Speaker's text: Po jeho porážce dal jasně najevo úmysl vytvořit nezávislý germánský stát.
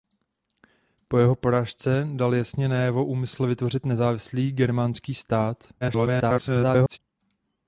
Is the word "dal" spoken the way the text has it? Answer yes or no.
yes